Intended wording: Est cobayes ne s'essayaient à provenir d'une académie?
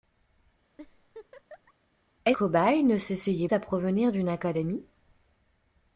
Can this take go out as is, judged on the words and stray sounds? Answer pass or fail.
fail